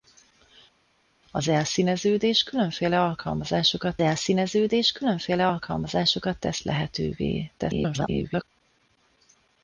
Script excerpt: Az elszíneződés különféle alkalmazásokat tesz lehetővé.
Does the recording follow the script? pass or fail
fail